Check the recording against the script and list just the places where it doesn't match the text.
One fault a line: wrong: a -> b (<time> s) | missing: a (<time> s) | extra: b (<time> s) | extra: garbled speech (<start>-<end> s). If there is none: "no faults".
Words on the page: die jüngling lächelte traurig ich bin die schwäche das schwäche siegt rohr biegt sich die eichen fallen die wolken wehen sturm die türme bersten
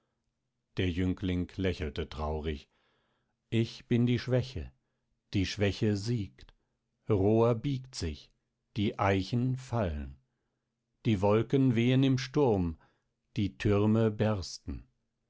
wrong: die -> der (0.8 s)
wrong: das -> die (5.3 s)
extra: im (12.0 s)